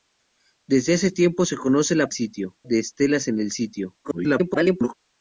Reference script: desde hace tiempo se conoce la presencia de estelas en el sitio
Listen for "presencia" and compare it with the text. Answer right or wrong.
wrong